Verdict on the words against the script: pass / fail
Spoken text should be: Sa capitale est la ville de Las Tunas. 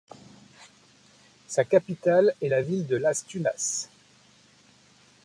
pass